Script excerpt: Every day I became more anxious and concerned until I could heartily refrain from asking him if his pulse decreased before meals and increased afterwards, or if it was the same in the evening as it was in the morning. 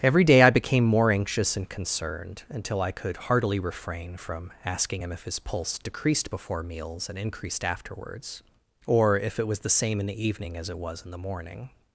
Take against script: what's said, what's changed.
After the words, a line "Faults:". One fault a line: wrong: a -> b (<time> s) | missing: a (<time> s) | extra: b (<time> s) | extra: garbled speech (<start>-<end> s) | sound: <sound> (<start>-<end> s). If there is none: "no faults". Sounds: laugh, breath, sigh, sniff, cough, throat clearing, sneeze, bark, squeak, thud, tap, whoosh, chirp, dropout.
Every day I became more anxious and concerned until I could heartily refrain from asking him if his pulse decreased before meals and increased afterwards, or if it was the same in the evening as it was in the morning.
Faults:
no faults